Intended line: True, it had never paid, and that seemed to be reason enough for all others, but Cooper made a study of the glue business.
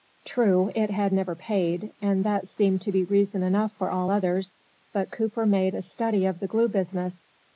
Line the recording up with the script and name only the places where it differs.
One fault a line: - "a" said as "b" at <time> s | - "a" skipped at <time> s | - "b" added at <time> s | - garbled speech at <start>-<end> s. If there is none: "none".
none